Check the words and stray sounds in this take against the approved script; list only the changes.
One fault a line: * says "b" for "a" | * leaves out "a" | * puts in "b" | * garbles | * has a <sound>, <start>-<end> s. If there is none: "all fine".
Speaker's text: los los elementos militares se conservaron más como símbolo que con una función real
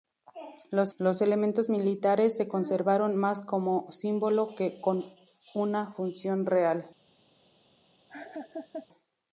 * has a laugh, 8.1-8.9 s